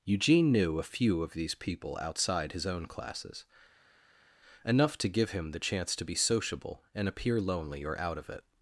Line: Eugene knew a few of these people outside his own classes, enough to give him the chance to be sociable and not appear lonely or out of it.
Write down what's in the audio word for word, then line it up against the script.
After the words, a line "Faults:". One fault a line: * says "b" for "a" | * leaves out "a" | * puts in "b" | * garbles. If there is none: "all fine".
Eugene knew a few of these people outside his own classes, enough to give him the chance to be sociable and appear lonely or out of it.
Faults:
* leaves out "not"